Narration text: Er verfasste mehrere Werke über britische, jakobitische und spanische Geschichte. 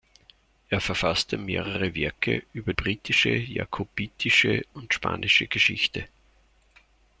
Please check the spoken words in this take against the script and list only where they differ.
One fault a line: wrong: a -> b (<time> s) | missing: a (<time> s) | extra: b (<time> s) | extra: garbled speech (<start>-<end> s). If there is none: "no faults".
no faults